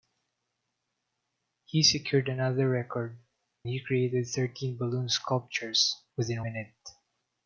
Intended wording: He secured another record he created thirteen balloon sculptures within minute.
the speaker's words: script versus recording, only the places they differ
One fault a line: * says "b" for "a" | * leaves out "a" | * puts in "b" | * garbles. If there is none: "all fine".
all fine